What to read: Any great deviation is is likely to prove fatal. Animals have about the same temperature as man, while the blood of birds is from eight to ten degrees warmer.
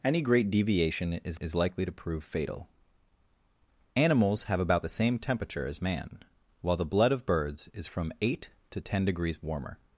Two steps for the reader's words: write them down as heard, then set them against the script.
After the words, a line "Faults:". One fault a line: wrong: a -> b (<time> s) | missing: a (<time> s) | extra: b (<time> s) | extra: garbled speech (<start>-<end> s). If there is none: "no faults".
Any great deviation is is likely to prove fatal. Animals have about the same temperature as man, while the blood of birds is from eight to ten degrees warmer.
Faults:
no faults